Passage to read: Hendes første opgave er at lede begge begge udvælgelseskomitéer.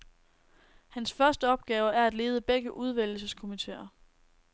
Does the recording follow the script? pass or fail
fail